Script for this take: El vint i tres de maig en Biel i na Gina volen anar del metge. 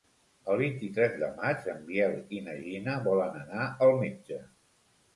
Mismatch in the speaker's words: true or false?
true